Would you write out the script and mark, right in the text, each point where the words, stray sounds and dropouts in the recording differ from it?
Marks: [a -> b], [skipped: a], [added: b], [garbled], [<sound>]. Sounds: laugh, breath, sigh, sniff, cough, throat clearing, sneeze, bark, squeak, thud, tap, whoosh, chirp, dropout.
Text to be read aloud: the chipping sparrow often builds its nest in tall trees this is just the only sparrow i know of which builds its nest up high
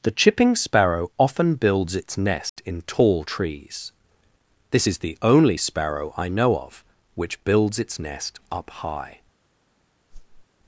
the chipping sparrow often builds its nest [dropout] in tall trees this is [skipped: just] the only sparrow i know of which builds its nest up high [whoosh]